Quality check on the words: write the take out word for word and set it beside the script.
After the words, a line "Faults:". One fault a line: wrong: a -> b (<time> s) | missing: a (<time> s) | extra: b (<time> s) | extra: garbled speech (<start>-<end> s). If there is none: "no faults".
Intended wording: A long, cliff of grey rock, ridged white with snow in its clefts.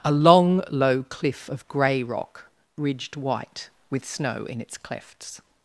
A long, low cliff of grey rock, ridged white with snow in its clefts.
Faults:
extra: low (0.7 s)